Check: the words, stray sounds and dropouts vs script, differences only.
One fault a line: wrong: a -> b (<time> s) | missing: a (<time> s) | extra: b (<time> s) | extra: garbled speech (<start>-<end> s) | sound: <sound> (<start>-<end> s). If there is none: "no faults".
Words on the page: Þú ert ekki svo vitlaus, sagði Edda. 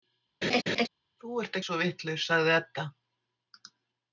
sound: laugh (0.4-0.9 s)
missing: ekki (1.6 s)